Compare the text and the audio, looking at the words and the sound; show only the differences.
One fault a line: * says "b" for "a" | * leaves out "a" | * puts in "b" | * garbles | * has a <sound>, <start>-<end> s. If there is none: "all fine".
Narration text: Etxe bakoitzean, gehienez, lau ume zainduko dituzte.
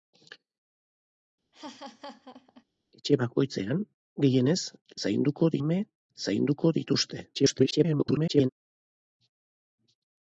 * has a laugh, 1.5-2.6 s
* says "zainduko" for "lau"
* garbles